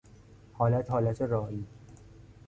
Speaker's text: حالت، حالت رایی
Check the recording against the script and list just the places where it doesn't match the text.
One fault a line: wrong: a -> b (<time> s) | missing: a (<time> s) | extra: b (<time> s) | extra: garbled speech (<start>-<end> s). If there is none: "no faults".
no faults